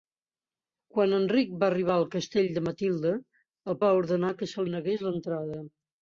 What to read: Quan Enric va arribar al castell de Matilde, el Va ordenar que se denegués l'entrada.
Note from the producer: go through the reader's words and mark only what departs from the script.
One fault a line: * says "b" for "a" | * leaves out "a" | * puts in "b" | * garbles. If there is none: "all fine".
all fine